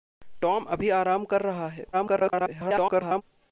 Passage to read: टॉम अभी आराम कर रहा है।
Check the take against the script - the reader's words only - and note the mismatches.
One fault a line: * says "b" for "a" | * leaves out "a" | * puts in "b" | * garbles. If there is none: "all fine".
* garbles